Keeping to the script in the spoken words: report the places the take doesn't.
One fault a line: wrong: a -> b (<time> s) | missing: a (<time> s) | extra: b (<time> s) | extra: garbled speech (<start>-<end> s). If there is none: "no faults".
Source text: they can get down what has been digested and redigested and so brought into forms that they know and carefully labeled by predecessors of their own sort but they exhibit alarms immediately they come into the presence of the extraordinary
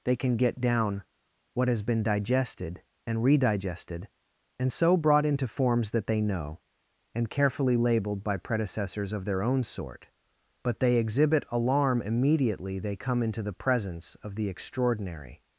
wrong: alarms -> alarm (11.5 s)